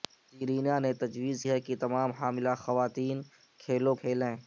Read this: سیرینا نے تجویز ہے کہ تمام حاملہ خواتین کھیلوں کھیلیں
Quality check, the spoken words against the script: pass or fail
pass